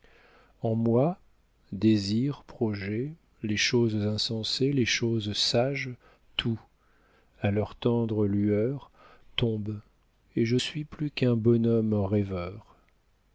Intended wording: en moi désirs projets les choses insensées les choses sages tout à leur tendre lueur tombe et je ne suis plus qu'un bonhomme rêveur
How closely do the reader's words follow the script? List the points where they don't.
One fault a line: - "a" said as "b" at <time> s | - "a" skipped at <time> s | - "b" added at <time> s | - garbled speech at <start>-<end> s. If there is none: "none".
- "ne" skipped at 10.6 s